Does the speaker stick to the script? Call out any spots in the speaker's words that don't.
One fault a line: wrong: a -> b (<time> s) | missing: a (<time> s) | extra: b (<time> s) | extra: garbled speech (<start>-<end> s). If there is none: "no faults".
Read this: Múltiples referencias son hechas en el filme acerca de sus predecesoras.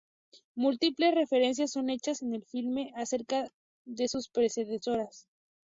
no faults